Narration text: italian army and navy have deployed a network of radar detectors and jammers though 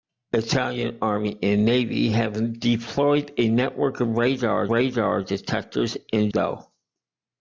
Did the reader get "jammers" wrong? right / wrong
wrong